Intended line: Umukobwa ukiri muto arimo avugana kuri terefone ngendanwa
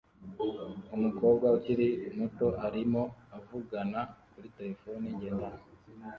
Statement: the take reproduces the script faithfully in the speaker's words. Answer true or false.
true